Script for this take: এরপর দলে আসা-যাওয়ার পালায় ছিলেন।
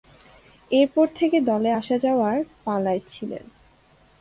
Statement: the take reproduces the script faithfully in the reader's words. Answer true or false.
false